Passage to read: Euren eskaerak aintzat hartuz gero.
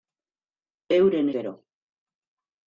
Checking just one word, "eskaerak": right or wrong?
wrong